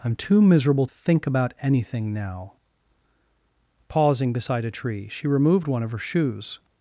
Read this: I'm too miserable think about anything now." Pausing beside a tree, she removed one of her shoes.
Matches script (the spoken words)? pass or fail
pass